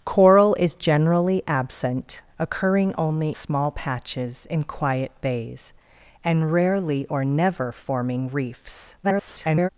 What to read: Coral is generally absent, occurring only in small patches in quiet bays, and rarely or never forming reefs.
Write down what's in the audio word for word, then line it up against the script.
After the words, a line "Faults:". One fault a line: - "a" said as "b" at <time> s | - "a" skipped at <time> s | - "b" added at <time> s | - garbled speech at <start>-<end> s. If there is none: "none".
Coral is generally absent, occurring only small patches in quiet bays, and rarely or never forming reefs. [garbled]
Faults:
- "in" skipped at 3.4 s
- garbled speech at 9.0-9.7 s